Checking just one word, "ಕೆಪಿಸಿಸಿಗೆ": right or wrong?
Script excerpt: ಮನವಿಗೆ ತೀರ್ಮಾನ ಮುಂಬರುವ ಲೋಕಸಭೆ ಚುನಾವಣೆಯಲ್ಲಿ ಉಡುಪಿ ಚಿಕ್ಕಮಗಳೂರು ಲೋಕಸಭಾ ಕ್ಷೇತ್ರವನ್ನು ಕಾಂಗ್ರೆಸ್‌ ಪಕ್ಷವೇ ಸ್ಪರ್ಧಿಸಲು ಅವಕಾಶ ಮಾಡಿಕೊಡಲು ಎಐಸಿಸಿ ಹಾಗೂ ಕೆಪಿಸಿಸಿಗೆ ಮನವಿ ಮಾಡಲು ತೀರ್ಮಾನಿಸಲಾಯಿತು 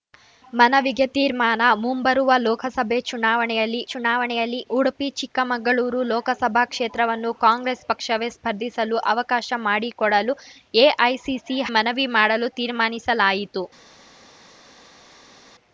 wrong